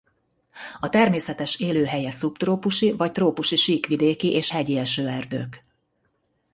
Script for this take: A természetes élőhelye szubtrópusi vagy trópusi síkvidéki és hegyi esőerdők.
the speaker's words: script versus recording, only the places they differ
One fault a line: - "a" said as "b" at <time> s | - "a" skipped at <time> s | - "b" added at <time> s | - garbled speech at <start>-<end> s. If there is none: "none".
none